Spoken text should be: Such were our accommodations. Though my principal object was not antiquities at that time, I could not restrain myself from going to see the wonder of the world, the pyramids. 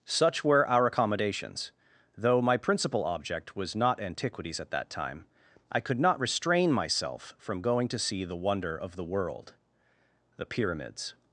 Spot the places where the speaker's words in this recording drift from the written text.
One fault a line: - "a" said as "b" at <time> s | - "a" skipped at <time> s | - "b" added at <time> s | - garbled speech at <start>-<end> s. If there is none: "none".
none